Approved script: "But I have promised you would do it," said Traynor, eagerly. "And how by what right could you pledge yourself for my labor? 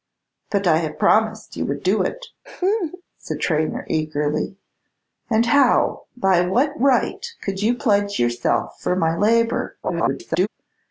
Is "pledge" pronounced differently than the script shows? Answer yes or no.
no